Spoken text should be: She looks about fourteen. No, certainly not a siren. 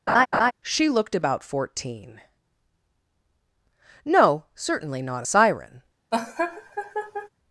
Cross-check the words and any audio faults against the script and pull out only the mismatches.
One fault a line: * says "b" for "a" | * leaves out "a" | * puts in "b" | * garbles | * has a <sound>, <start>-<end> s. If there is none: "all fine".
* has a laugh, 0.1-0.5 s
* says "looked" for "looks"
* has a laugh, 6.1-7.3 s